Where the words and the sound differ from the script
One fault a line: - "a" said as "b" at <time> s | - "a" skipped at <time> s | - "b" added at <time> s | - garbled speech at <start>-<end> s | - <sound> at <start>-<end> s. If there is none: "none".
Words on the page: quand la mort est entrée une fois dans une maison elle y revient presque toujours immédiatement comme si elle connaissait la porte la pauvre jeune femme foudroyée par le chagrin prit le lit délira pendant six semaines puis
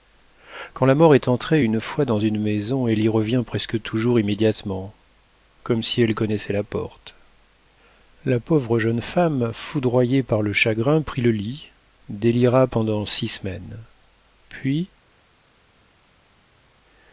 none